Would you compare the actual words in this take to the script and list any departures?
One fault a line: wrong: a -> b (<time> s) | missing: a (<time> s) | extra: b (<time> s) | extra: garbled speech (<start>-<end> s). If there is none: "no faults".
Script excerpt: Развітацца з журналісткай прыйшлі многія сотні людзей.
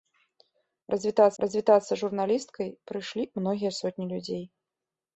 extra: развітацца (1.4 s)